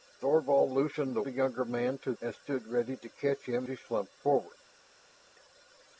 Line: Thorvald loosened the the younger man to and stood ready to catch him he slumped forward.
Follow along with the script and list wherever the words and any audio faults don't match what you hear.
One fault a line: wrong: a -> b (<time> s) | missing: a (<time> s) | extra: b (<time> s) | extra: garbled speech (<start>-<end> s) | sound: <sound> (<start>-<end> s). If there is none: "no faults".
no faults